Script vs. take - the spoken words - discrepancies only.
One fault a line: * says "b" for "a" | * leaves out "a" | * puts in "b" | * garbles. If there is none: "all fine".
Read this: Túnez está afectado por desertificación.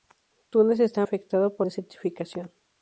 all fine